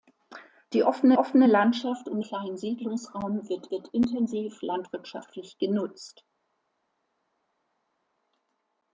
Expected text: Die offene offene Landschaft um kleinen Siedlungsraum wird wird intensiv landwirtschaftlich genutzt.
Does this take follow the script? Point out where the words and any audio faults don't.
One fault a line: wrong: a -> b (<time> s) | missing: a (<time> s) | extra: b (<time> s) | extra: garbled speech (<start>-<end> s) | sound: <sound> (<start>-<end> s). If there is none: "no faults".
no faults